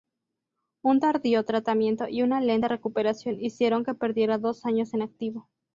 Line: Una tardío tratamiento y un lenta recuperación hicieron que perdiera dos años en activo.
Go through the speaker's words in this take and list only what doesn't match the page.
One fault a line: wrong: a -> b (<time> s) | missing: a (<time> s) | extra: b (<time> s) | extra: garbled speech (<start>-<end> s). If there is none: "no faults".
wrong: Una -> Un (0.8 s)
wrong: un -> una (2.2 s)